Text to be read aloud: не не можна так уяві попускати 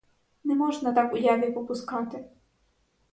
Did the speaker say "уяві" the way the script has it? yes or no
yes